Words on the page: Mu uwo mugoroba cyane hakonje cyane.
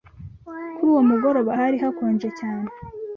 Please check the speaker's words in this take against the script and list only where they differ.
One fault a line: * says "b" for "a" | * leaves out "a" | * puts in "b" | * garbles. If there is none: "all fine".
* says "Kuri" for "Mu"
* says "hari" for "cyane"